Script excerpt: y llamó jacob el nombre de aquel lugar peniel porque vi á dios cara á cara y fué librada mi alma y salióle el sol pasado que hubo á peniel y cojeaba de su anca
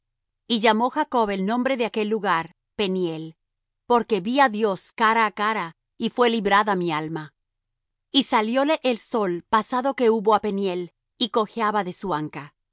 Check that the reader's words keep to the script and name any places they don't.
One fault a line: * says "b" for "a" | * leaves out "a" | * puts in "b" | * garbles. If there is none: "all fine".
all fine